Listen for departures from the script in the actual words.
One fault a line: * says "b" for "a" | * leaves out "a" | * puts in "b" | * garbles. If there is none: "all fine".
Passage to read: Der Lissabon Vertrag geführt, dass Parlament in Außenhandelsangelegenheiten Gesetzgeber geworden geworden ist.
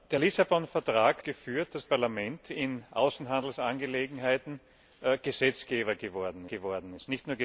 all fine